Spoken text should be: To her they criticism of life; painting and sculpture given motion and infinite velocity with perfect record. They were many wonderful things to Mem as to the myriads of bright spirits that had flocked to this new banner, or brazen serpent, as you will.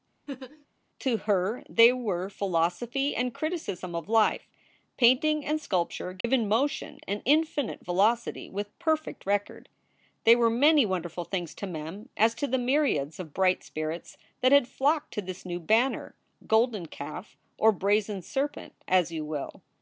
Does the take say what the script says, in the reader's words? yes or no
no